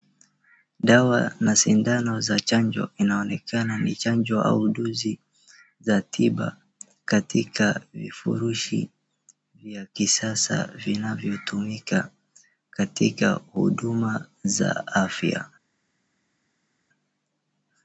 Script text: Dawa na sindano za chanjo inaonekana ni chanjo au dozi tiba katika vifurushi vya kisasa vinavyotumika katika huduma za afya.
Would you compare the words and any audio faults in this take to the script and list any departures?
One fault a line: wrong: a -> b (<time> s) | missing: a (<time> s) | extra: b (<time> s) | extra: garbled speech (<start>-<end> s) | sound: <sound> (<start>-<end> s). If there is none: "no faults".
extra: za (5.8 s)